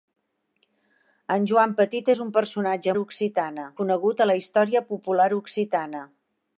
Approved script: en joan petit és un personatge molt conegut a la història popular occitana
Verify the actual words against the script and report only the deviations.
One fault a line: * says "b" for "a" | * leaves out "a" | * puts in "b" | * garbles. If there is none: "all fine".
* says "occitana" for "molt"